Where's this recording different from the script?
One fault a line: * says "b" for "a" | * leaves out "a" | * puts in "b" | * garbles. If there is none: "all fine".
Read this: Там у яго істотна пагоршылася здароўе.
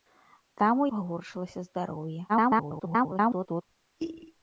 * leaves out "яго істотна"
* garbles